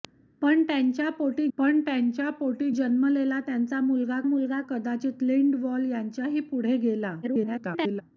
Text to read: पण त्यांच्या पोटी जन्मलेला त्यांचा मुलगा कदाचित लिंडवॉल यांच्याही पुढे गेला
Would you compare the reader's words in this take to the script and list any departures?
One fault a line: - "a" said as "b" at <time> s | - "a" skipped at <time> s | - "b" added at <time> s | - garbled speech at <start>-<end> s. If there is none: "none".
- "पण त्यांच्या पोटी" added at 1.6 s
- "मुलगा" added at 4.2 s
- garbled speech at 7.2-8.0 s